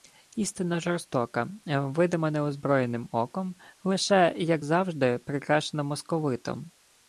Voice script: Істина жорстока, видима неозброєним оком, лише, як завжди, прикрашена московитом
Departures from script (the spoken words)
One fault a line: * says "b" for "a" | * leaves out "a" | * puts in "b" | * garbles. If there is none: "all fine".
all fine